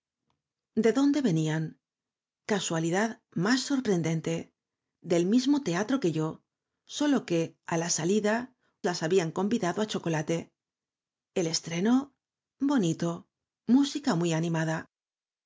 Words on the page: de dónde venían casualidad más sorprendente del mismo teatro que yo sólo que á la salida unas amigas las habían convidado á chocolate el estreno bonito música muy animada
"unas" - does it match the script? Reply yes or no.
no